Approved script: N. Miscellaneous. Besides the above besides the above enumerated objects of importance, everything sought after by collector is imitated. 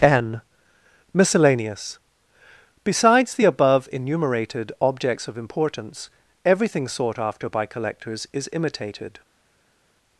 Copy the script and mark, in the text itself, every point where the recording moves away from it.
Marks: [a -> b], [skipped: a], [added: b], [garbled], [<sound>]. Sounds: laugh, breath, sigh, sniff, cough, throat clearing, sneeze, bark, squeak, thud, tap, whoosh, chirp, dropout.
N. Miscellaneous. Besides the above [skipped: besides the above] enumerated objects of importance, everything sought after by [collector -> collectors] is imitated.